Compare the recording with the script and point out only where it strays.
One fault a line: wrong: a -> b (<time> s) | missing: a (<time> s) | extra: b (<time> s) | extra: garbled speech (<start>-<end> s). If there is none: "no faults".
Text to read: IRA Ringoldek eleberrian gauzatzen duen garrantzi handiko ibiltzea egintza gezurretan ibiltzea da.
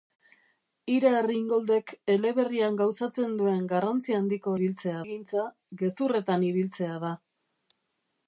no faults